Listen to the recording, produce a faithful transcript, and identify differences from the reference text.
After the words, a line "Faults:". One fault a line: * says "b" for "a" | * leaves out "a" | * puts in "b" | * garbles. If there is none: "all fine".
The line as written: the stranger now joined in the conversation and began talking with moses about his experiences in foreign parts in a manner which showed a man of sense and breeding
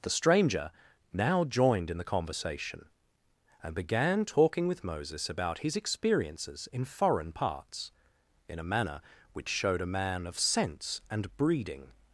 the stranger now joined in the conversation and began talking with moses about his experiences in foreign parts in a manner which showed a man of sense and breeding
Faults:
all fine